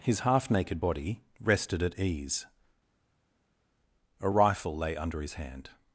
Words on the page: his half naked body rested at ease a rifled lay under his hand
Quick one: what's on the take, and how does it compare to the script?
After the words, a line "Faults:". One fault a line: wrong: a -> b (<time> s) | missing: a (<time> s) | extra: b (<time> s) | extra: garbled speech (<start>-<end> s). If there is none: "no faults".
his half naked body rested at ease a rifle lay under his hand
Faults:
wrong: rifled -> rifle (4.3 s)